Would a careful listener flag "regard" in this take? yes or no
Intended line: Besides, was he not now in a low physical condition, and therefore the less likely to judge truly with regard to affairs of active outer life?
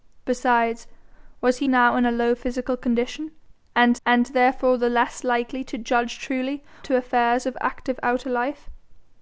yes